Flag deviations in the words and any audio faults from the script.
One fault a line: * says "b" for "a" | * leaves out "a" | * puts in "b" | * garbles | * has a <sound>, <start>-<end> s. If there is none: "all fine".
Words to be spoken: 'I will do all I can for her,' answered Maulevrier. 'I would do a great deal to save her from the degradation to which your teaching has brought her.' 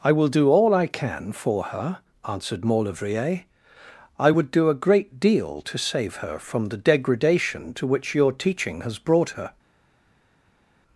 all fine